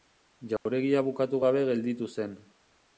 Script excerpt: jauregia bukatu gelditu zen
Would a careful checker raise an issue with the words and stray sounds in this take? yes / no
yes